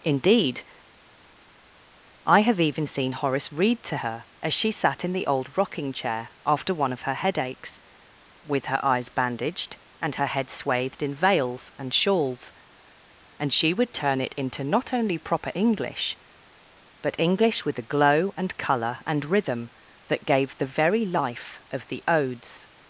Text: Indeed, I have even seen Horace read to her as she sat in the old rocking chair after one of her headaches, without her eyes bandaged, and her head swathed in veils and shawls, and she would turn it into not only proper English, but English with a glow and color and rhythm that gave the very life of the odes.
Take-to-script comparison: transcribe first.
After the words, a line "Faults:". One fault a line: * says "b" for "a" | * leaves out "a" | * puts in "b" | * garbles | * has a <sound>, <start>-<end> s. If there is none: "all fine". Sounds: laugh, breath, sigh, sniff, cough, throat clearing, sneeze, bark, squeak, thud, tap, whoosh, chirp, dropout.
Indeed, I have even seen Horace read to her as she sat in the old rocking chair after one of her headaches, with her eyes bandaged, and her head swathed in veils and shawls, and she would turn it into not only proper English, but English with a glow and color and rhythm that gave the very life of the odes.
Faults:
* says "with" for "without"